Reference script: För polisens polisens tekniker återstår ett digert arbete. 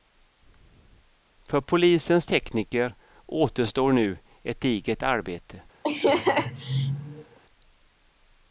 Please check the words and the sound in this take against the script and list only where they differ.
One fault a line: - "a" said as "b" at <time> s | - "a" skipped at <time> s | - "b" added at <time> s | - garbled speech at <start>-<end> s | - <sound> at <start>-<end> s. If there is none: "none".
- "polisens" skipped at 2.2 s
- "nu" added at 3.9 s
- laugh at 5.8-7.4 s